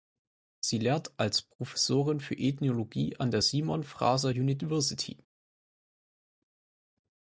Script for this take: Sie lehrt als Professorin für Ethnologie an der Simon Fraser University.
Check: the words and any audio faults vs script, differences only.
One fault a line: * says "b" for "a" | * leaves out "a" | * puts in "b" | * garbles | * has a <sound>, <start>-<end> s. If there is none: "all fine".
all fine